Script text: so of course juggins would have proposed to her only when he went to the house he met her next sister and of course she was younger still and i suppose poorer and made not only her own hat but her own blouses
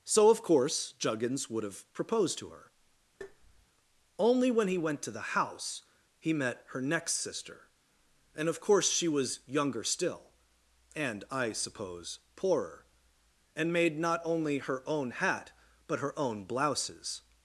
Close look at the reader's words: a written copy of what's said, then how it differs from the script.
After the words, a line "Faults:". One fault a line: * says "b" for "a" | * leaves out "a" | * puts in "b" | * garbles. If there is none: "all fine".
so of course juggins would have proposed to her only when he went to the house he met her next sister and of course she was younger still and i suppose poorer and made not only her own hat but her own blouses
Faults:
all fine